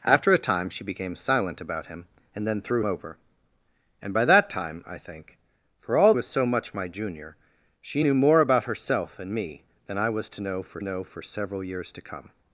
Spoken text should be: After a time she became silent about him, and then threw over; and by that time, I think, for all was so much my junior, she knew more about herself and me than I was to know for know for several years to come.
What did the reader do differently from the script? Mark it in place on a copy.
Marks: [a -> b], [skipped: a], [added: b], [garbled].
After a time she became silent about him, and then threw over; and by that time, I think, for all was so much my junior, she knew more about herself and me than I was to know for know for several years to come.